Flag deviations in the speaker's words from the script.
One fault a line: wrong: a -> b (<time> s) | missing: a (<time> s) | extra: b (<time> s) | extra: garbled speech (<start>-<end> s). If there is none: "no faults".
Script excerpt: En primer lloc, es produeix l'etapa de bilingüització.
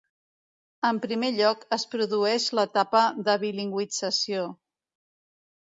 no faults